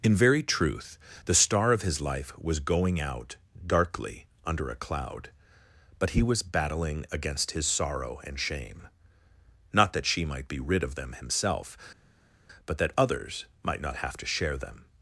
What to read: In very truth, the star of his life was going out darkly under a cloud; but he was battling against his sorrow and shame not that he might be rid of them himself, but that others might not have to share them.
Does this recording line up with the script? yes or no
no